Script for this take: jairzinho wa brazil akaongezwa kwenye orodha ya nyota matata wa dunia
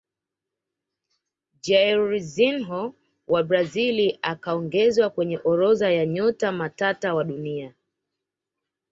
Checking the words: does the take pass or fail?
pass